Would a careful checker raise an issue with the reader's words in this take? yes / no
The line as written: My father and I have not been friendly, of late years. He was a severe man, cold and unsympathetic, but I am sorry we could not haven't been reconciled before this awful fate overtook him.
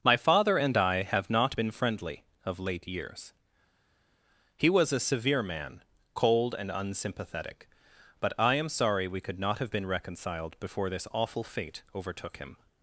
yes